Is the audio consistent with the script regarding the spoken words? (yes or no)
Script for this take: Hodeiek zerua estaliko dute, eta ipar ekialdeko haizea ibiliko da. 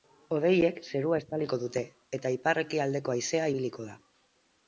yes